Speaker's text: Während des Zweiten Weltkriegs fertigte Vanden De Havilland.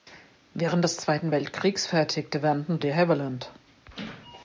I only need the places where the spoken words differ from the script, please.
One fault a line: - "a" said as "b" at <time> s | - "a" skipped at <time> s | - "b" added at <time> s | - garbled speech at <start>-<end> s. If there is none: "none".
none